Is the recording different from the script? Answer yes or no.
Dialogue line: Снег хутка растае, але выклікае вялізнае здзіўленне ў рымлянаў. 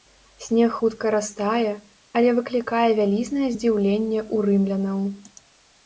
no